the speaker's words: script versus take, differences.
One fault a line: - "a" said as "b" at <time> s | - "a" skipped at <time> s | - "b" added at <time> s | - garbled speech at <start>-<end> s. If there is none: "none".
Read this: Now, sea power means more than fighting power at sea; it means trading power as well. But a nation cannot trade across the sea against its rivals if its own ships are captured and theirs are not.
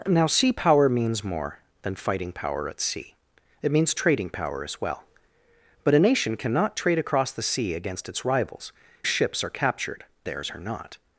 - "if its own" skipped at 8.7 s
- "and" skipped at 10.0 s